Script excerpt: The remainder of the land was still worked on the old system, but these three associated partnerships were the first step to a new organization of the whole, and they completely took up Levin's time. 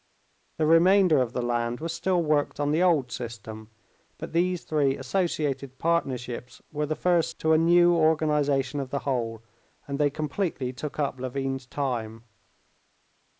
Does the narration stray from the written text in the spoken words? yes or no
yes